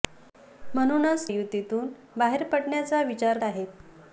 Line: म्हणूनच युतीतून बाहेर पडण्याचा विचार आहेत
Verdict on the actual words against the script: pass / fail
pass